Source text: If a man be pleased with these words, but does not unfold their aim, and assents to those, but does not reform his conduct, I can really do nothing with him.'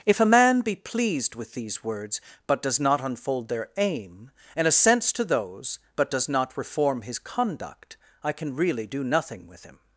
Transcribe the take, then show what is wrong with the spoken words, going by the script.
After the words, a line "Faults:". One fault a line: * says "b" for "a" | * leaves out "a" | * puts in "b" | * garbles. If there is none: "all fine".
If a man be pleased with these words, but does not unfold their aim, and assents to those, but does not reform his conduct, I can really do nothing with him.'
Faults:
all fine